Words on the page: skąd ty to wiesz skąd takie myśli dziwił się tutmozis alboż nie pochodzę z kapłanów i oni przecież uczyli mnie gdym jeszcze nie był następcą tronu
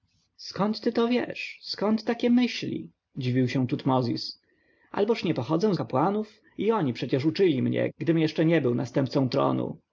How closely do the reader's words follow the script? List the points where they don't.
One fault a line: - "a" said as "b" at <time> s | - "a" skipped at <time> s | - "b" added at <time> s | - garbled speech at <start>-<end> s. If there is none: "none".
none